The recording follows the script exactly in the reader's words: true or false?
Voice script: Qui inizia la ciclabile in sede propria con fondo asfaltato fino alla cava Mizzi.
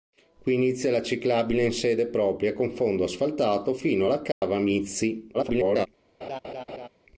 false